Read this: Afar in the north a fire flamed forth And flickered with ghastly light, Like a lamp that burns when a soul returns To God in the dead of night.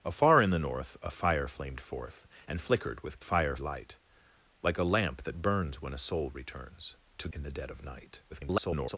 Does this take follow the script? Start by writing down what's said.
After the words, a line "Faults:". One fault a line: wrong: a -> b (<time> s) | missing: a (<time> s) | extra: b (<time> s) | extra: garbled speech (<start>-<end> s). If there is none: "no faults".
Afar in the north a fire flamed forth And flickered with fire light, Like a lamp that burns when a soul returns To In the dead of night. [garbled]
Faults:
wrong: ghastly -> fire (3.2 s)
missing: God (7.3 s)
extra: garbled speech (8.3-9.0 s)